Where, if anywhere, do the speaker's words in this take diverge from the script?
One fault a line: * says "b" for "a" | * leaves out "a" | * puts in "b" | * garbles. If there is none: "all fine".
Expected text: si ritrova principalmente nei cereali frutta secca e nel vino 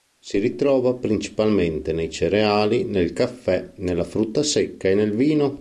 * puts in "nel caffè nella"